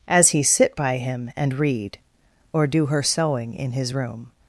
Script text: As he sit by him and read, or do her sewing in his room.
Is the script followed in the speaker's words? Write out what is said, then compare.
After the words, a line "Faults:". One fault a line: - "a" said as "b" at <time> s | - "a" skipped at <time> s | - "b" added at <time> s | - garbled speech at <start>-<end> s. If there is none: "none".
As he sit by him and read, or do her sewing in his room.
Faults:
none